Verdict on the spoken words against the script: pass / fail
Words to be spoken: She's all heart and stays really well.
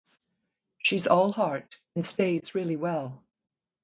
pass